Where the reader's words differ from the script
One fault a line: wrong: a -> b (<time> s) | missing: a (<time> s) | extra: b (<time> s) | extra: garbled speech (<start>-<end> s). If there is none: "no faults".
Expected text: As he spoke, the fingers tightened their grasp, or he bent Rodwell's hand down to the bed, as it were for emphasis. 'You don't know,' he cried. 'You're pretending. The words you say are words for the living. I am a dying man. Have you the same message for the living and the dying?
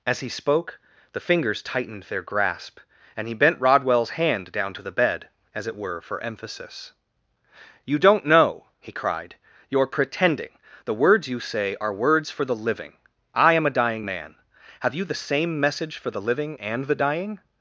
wrong: or -> and (3.2 s)